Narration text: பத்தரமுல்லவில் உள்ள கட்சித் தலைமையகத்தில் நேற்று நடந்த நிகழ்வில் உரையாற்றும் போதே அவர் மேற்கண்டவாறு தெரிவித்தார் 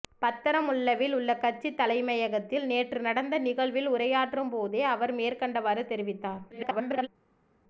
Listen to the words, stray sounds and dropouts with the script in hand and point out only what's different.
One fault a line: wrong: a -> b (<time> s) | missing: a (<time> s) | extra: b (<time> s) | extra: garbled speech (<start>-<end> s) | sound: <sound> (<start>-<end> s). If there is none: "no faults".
extra: garbled speech (6.5-7.1 s)